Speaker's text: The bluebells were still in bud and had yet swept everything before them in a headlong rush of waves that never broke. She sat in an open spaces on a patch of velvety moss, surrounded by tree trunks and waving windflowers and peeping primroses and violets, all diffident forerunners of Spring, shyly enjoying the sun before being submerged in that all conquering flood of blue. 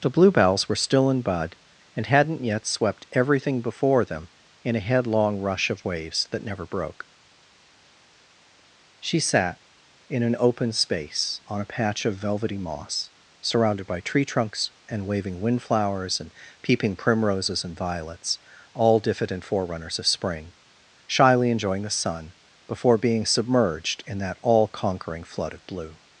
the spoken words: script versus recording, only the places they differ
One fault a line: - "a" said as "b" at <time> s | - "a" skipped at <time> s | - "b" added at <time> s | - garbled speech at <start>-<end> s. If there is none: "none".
- "had" said as "hadn't" at 2.1 s
- "spaces" said as "space" at 10.7 s